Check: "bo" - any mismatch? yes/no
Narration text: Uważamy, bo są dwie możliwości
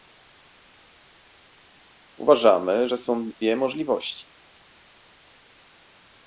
yes